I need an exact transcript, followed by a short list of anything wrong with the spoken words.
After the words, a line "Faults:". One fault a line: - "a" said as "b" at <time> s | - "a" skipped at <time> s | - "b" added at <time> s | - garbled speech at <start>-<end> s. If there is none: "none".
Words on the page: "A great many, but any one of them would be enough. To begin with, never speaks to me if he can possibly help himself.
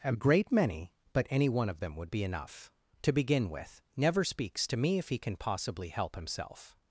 "A great many, but any one of them would be enough. To begin with, never speaks to me if he can possibly help himself.
Faults:
none